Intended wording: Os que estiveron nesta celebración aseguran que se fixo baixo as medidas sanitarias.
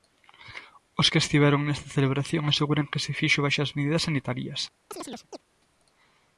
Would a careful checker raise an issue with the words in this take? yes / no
no